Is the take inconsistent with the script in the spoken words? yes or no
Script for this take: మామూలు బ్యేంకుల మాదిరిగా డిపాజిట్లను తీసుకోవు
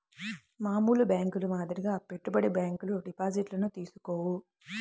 yes